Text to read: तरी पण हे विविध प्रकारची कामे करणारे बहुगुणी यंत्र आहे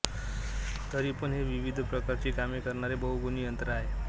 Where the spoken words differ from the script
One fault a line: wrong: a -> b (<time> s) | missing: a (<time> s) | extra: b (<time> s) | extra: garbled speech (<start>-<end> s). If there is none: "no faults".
no faults